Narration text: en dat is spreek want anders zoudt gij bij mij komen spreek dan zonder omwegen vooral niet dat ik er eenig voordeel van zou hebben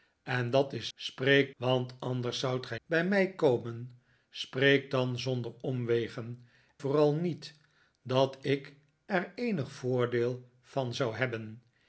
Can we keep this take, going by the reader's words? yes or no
yes